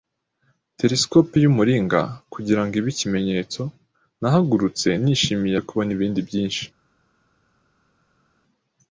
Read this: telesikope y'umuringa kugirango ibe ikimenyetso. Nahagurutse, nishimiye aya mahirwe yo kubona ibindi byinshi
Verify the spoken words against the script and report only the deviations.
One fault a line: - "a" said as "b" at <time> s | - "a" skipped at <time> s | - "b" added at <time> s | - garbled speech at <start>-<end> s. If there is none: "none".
- "aya mahirwe" skipped at 5.6 s